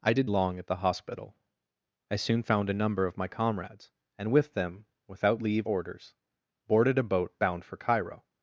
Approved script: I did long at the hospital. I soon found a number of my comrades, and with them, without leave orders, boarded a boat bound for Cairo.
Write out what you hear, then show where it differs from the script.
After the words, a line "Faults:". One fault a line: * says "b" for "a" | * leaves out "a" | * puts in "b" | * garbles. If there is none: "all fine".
I did long at the hospital. I soon found a number of my comrades, and with them, without leave orders, boarded a boat bound for Cairo.
Faults:
all fine